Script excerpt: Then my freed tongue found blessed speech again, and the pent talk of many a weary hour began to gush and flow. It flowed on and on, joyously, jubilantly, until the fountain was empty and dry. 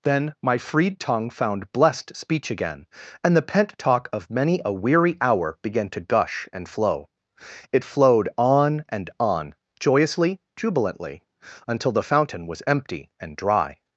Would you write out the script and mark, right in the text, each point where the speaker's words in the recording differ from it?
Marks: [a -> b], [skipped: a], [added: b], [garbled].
Then my freed tongue found blessed speech again, and the pent talk of many a weary hour began to gush and flow. It flowed on and on, joyously, jubilantly, until the fountain was empty and dry.